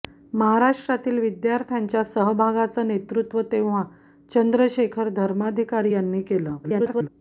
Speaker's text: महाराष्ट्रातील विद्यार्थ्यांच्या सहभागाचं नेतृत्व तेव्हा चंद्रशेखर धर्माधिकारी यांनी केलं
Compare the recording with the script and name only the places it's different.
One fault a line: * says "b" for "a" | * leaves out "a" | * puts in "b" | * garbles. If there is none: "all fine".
* garbles